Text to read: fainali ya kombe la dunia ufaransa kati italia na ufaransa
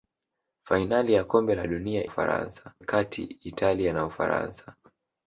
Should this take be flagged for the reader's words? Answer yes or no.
no